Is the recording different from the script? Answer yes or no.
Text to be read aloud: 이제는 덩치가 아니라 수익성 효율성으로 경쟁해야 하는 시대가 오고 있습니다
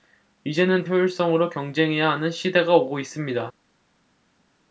yes